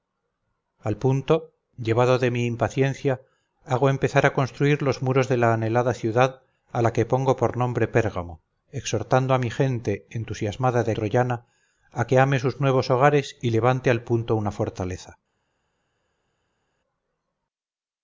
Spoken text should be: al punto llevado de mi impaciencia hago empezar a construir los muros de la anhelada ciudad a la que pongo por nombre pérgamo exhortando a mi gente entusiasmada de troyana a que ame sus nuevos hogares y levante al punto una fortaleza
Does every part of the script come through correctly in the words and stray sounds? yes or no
yes